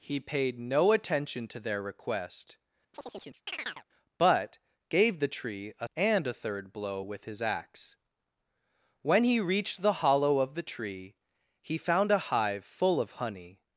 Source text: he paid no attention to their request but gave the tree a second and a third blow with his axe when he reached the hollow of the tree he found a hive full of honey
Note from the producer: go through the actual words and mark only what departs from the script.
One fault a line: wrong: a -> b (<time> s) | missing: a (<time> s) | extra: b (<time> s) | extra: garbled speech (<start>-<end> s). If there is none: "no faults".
missing: second (5.9 s)